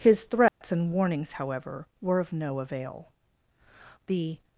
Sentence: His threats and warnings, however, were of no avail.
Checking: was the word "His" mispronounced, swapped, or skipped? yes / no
no